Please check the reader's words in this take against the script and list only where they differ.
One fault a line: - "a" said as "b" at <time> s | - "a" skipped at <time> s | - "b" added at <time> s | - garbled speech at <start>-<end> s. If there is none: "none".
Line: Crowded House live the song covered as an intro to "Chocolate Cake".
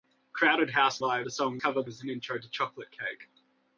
none